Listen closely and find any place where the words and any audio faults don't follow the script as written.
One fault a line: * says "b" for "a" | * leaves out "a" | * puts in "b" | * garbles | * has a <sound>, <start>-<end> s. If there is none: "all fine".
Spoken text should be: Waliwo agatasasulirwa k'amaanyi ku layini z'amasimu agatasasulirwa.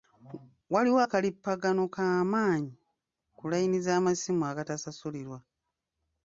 * says "akalippagano" for "agatasasulirwa"